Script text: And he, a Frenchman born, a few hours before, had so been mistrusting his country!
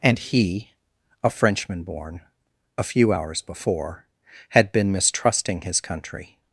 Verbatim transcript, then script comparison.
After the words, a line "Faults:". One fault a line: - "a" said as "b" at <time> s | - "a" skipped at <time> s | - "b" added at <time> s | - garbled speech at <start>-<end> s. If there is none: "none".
And he, a Frenchman born, a few hours before, had been mistrusting his country!
Faults:
- "so" skipped at 4.7 s